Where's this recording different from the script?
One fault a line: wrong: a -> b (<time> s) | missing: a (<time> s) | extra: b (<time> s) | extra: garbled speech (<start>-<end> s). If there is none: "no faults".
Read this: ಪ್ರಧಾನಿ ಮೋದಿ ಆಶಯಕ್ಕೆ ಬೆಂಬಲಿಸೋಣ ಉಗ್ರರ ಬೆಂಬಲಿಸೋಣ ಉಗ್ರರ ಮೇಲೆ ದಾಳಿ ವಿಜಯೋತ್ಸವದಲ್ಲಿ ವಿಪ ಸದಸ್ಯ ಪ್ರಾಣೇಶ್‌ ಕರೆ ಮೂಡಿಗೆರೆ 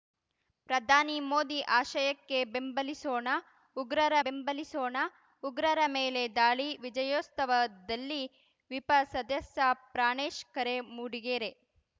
no faults